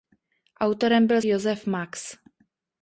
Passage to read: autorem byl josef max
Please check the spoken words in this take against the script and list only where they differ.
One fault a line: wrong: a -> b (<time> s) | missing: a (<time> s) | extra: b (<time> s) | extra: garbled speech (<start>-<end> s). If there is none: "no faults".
no faults